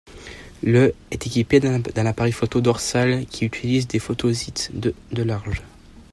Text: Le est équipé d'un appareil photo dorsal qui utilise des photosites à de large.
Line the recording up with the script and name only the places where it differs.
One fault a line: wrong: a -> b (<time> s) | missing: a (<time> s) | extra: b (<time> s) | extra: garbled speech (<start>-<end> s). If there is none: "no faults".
wrong: à -> de (4.7 s)